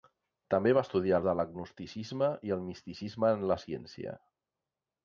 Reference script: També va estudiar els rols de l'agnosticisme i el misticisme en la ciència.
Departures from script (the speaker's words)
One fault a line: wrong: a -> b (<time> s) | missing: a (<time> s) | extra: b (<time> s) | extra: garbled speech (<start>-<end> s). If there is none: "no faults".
missing: els rols (1.2 s)